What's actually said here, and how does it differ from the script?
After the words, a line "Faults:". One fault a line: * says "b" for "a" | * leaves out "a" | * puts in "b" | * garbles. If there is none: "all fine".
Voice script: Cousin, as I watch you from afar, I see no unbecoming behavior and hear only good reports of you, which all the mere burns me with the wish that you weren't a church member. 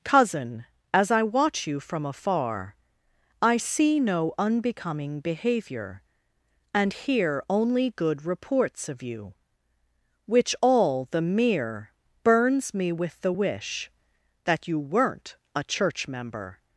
Cousin, as I watch you from afar, I see no unbecoming behavior and hear only good reports of you, which all the mere burns me with the wish that you weren't a church member.
Faults:
all fine